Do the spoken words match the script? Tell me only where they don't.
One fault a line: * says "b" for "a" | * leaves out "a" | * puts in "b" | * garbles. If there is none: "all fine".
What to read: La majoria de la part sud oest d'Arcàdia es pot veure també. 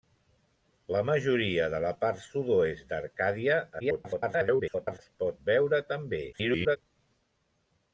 * garbles
* garbles